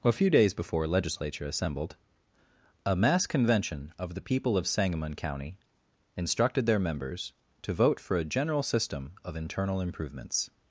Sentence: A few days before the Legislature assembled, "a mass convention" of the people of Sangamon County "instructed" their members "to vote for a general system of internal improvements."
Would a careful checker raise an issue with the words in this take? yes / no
yes